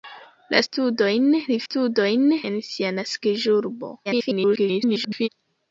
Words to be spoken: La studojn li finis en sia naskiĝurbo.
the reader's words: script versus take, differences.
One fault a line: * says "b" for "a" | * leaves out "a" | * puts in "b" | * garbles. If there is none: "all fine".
* says "studojn" for "finis"
* garbles